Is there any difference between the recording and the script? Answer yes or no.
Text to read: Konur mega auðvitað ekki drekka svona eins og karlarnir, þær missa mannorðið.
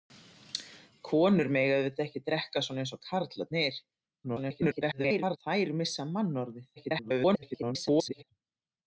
yes